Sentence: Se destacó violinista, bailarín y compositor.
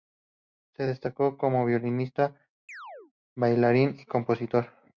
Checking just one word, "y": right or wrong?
right